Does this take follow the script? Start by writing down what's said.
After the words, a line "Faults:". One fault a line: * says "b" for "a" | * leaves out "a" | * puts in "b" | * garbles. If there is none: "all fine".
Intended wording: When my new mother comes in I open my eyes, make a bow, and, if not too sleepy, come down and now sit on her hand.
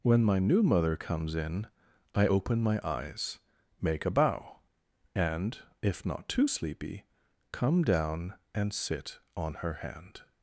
When my new mother comes in I open my eyes, make a bow, and, if not too sleepy, come down and sit on her hand.
Faults:
* leaves out "now"